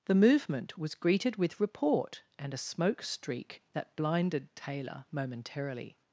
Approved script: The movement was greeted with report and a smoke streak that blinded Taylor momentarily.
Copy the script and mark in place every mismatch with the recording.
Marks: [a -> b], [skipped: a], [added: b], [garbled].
The movement was greeted with report and a smoke streak that blinded Taylor momentarily.